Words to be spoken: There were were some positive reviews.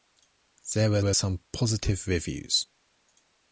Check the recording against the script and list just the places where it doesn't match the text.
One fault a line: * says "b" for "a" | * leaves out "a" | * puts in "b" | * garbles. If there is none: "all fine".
all fine